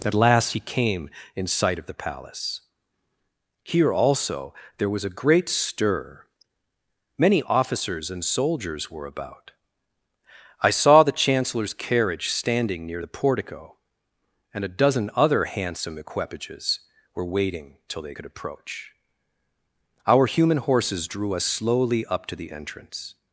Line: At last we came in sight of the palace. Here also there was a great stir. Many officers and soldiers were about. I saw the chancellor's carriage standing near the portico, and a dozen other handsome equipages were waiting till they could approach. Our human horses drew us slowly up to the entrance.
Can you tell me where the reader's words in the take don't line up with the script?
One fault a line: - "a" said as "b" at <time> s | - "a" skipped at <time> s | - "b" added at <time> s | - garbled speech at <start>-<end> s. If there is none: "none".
- "we" said as "he" at 0.5 s